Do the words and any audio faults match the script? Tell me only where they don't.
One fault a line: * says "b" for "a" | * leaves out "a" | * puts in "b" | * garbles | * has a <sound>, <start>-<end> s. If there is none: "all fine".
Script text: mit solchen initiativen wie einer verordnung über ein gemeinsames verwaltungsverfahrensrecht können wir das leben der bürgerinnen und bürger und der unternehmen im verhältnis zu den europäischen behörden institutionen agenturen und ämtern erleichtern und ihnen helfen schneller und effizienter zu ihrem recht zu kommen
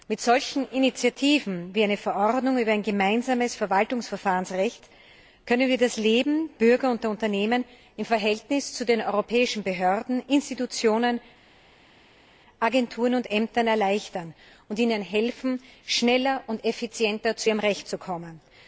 * leaves out "der bürgerinnen und"